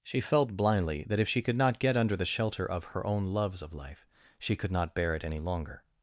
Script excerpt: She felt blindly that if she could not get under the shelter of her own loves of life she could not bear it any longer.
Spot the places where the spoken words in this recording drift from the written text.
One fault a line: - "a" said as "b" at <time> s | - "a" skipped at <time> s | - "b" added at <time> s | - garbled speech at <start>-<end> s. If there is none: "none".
none